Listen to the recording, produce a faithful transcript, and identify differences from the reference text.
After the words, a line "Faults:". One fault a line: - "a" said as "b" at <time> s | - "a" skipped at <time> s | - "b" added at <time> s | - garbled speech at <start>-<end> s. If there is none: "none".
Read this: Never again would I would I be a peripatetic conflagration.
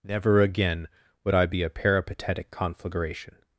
Never again would I be a peripatetic conflagration.
Faults:
- "would I" skipped at 1.5 s